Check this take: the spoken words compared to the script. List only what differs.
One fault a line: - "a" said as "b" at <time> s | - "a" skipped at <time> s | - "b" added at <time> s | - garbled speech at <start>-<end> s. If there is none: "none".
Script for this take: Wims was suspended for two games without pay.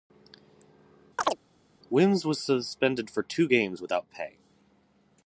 none